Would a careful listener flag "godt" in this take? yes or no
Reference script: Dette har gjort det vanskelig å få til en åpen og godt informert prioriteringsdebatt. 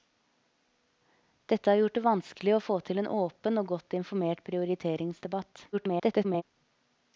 no